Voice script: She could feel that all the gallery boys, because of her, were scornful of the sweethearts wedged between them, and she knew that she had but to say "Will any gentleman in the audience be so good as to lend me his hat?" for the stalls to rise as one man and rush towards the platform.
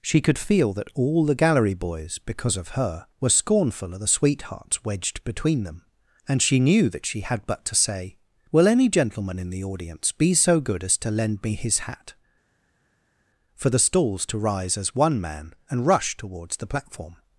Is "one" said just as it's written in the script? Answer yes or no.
yes